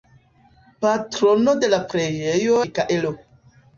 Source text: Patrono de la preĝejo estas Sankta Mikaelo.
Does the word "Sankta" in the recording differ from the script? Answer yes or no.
yes